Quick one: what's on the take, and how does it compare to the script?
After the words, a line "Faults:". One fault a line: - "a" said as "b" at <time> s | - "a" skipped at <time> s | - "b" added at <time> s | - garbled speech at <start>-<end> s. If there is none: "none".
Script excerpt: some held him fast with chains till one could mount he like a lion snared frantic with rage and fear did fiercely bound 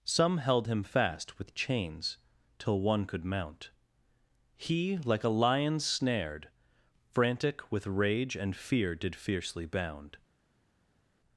some held him fast with chains till one could mount he like a lion snared frantic with rage and fear did fiercely bound
Faults:
none